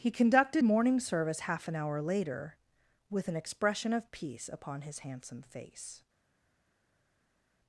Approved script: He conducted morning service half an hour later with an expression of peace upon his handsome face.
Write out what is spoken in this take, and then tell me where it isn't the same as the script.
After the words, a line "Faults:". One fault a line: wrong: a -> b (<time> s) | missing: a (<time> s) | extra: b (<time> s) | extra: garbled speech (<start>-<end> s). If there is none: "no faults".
He conducted morning service half an hour later with an expression of peace upon his handsome face.
Faults:
no faults